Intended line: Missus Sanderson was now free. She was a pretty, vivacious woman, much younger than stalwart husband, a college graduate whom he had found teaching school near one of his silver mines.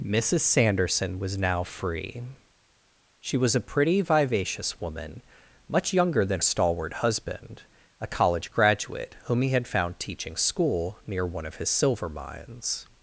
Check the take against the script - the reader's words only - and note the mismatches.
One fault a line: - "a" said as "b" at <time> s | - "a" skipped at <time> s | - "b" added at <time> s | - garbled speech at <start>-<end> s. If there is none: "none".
none